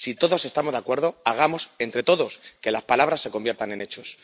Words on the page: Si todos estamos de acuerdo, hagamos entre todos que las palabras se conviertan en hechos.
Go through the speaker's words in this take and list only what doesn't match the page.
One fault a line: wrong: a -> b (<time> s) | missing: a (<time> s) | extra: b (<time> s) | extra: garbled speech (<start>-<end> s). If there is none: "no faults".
no faults